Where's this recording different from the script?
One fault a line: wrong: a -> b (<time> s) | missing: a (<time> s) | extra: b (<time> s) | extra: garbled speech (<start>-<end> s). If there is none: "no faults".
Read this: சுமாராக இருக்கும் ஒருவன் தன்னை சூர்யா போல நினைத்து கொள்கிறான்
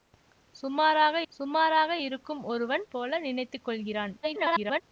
extra: சுமாராக (1.3 s)
missing: தன்னை சூர்யா (2.8 s)
extra: garbled speech (4.2-4.8 s)